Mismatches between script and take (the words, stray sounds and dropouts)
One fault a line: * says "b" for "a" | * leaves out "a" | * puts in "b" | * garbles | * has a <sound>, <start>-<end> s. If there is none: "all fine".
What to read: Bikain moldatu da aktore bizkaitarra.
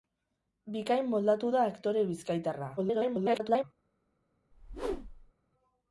* garbles
* has a whoosh, 4.5-5.3 s